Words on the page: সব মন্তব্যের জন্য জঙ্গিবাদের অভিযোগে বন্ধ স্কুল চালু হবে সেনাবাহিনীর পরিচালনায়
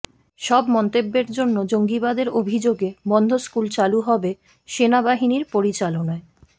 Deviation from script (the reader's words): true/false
false